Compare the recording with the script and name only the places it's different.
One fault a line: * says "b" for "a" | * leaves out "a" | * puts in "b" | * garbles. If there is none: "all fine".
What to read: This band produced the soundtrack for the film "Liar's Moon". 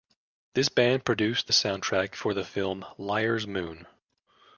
all fine